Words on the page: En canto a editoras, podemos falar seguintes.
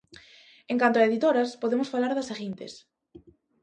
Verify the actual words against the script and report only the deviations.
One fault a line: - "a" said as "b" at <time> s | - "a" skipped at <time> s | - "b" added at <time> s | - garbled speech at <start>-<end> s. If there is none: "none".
- "das" added at 2.1 s